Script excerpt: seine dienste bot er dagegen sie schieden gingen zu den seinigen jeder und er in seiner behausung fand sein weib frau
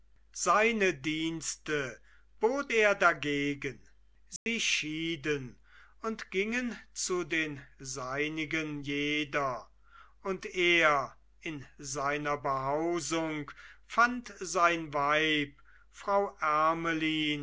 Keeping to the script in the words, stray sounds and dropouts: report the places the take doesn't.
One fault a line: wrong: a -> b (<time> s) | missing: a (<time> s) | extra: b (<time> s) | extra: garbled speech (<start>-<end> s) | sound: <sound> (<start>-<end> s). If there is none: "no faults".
sound: dropout (4.4-4.5 s)
extra: und (6.0 s)